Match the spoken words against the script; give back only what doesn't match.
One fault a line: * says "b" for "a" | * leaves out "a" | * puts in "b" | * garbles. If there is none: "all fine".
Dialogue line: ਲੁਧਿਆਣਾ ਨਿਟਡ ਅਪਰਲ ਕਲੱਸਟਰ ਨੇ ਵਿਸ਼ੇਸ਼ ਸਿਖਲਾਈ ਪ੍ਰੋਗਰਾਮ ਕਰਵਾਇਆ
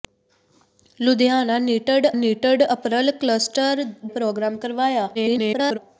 * puts in "ਨਿਟਡ"
* leaves out "ਨੇ ਵਿਸ਼ੇਸ਼ ਸਿਖਲਾਈ"
* garbles